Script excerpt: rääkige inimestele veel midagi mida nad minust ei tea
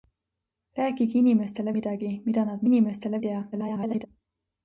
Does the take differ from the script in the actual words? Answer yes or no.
yes